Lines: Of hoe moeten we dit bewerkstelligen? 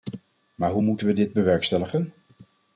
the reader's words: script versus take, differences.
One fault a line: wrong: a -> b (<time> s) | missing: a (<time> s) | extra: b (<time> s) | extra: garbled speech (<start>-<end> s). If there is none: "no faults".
wrong: Of -> Maar (0.6 s)